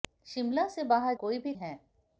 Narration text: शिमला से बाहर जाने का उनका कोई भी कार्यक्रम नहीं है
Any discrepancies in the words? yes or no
yes